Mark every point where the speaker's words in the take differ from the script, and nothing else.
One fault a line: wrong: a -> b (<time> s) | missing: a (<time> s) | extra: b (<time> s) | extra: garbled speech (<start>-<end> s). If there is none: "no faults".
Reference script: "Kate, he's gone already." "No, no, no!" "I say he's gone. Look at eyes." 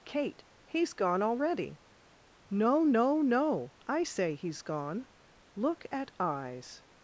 no faults